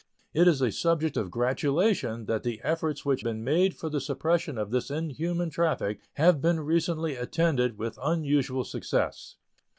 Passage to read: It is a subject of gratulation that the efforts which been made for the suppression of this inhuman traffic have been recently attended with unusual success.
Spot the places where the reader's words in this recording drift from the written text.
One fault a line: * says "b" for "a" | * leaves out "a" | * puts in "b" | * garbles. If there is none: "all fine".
all fine